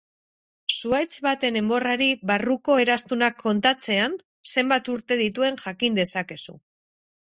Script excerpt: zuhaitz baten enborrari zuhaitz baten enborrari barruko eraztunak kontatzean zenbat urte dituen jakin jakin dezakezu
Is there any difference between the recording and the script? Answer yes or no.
yes